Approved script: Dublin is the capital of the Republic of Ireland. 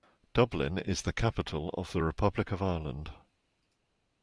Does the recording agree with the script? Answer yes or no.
yes